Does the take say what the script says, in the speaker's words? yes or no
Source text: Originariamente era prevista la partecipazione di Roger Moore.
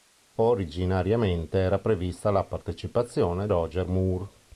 no